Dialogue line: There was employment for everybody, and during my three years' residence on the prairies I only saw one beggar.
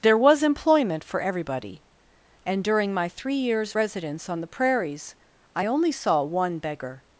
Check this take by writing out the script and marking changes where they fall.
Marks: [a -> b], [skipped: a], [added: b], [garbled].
There was employment for everybody, and during my three years' residence on the prairies I only saw one beggar.